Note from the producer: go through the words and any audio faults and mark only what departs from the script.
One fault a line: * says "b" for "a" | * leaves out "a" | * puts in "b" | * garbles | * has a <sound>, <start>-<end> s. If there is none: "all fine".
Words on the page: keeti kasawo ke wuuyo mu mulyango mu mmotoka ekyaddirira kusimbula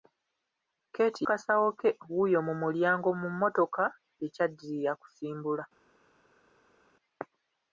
all fine